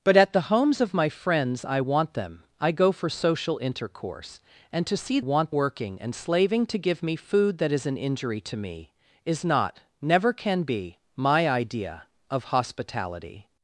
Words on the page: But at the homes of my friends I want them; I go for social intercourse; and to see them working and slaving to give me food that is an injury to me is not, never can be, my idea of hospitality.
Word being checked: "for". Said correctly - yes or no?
yes